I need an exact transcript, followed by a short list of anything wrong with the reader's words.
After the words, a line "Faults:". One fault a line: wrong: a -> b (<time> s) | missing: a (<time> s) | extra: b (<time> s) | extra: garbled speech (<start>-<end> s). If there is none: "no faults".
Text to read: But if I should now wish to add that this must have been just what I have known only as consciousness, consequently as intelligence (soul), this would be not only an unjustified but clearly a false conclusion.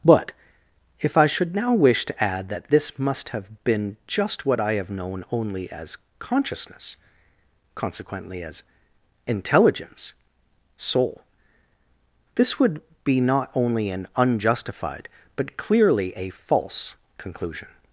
But if I should now wish to add that this must have been just what I have known only as consciousness, consequently as intelligence (soul), this would be not only an unjustified but clearly a false conclusion.
Faults:
no faults